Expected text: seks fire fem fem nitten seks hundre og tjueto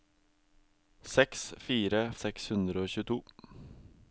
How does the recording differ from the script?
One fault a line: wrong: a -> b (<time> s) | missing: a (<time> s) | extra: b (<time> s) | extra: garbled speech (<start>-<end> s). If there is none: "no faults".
missing: fem fem nitten (2.0 s)